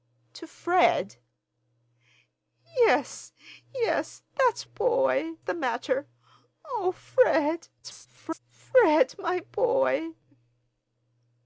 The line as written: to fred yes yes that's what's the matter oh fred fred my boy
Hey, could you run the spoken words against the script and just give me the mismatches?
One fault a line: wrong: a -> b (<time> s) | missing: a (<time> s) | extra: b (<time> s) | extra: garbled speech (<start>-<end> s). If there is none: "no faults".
wrong: what's -> boy (4.6 s)
extra: garbled speech (7.8-8.4 s)